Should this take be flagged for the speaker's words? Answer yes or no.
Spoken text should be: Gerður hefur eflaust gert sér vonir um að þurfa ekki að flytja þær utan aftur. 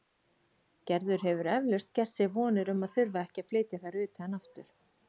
no